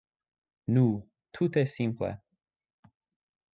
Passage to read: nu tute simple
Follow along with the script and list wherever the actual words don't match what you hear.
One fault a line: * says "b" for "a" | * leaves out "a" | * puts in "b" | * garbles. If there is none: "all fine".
all fine